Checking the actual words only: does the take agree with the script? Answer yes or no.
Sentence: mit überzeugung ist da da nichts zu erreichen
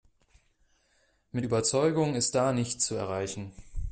no